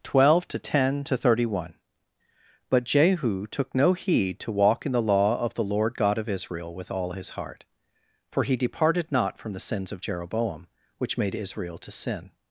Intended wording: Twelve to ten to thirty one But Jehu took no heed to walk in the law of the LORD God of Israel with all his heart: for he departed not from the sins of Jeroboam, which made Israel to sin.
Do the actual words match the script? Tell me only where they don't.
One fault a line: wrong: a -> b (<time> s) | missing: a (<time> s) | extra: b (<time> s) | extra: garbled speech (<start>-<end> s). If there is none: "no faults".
no faults